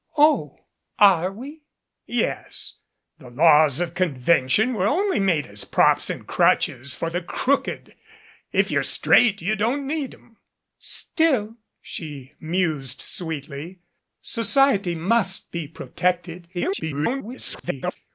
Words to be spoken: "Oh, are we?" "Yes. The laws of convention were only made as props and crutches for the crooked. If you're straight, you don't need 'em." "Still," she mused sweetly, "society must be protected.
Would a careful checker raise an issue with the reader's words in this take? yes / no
yes